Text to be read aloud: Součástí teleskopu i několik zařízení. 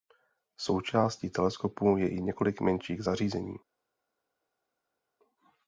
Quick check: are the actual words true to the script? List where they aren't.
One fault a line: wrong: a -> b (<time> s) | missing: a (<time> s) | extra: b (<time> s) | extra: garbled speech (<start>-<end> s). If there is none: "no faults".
extra: je (2.0 s)
extra: menších (2.6 s)